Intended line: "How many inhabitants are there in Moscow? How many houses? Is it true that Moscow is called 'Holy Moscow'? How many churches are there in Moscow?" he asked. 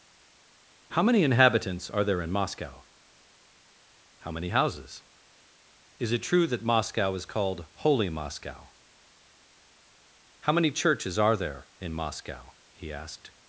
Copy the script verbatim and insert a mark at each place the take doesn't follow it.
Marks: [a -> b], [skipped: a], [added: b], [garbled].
"How many inhabitants are there in Moscow? How many houses? Is it true that Moscow is called 'Holy Moscow'? How many churches are there in Moscow?" he asked.